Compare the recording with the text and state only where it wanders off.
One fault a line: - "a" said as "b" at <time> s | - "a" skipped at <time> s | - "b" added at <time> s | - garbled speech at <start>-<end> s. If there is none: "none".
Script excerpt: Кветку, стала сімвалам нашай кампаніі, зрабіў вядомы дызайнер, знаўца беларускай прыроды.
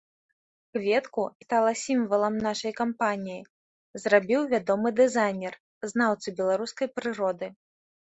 none